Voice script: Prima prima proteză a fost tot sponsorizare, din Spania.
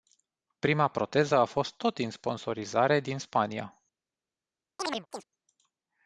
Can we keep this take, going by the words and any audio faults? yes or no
no